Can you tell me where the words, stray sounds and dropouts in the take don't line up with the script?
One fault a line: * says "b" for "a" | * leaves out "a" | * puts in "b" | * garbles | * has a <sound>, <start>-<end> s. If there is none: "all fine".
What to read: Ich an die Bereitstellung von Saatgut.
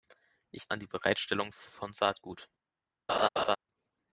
* has a laugh, 3.1-3.6 s